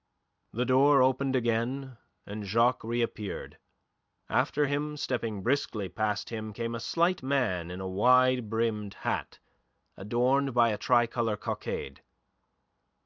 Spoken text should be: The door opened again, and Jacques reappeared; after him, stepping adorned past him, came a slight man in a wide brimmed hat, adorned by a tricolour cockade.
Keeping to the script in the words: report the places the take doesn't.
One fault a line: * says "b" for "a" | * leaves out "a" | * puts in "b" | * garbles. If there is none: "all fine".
* says "briskly" for "adorned"